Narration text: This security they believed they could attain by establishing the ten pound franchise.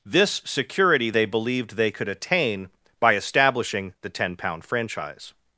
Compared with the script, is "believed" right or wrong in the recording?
right